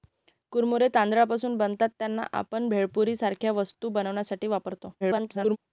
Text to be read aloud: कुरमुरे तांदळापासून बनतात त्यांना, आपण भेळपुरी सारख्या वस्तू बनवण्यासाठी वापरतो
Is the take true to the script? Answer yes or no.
no